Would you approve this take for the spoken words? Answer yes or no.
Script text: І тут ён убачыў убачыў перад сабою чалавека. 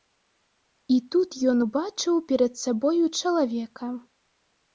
no